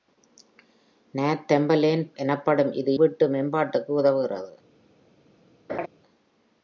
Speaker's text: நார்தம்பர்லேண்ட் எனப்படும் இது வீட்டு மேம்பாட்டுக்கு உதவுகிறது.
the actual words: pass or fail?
pass